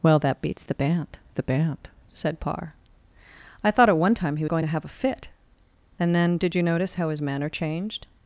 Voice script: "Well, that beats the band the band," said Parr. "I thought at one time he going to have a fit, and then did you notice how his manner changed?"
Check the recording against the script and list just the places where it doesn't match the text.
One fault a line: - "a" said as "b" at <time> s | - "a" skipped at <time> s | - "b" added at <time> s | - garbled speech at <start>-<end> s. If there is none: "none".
none